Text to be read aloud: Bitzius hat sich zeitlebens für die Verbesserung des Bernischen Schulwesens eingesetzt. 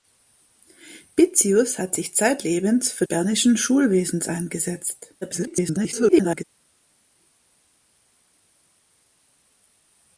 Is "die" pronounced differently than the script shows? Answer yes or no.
yes